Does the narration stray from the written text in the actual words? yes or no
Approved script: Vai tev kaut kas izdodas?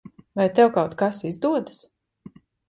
no